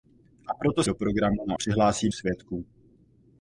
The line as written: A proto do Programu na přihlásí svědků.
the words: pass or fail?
pass